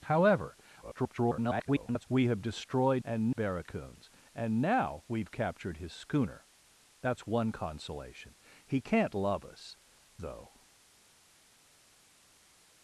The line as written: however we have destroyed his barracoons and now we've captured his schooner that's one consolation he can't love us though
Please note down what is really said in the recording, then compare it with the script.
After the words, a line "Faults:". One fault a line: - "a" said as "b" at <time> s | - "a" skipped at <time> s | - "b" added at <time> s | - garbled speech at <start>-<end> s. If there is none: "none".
however [garbled] we have destroyed and barracoons and now we've captured his schooner that's one consolation he can't love us though
Faults:
- garbled speech at 0.8-2.1 s
- "his" said as "and" at 3.0 s